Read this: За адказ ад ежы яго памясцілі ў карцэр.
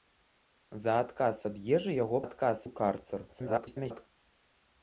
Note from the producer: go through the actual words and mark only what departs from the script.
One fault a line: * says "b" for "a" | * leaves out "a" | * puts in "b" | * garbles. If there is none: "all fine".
* says "адказ" for "памясцілі"
* garbles